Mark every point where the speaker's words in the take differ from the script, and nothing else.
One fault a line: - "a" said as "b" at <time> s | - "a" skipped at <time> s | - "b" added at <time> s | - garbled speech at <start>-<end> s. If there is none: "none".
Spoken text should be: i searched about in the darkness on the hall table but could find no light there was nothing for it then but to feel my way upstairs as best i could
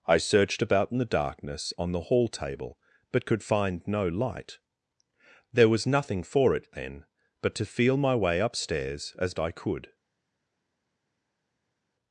- "best" skipped at 9.3 s